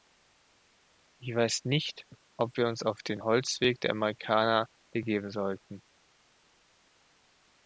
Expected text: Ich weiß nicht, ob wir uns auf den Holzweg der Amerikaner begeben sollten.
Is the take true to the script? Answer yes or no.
yes